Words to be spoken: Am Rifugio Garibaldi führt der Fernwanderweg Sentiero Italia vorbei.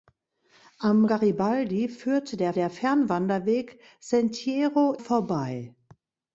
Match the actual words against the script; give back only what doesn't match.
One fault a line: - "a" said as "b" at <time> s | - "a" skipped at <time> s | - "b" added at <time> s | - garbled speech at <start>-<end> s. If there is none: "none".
- "Rifugio" skipped at 1.1 s
- "der" added at 2.5 s
- "Italia" skipped at 4.9 s